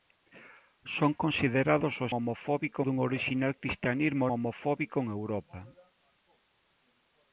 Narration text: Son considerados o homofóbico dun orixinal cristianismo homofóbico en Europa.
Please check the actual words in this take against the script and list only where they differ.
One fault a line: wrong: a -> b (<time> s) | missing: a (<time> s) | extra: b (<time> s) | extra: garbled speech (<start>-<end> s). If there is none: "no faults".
no faults